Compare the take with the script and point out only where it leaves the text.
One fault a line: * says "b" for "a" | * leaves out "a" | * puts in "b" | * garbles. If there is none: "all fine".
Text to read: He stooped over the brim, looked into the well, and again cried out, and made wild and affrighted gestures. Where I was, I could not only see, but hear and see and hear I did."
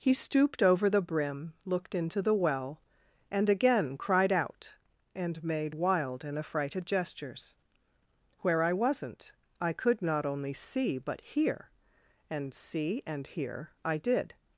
* says "wasn't" for "was"